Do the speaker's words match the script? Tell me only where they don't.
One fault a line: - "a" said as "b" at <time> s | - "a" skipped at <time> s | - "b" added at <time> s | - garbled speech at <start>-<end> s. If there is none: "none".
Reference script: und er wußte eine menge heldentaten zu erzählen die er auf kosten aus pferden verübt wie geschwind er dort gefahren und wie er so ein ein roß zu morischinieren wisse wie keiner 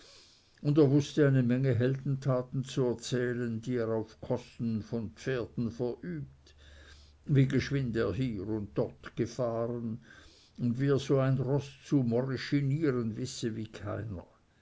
- "aus" said as "von" at 4.8 s
- "hier und" added at 8.1 s
- "ein" skipped at 11.4 s